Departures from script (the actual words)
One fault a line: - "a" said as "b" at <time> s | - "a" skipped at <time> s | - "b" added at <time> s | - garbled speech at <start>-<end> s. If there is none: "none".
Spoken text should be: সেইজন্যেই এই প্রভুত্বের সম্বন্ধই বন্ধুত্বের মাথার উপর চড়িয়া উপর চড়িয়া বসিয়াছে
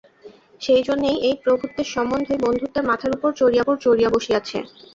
none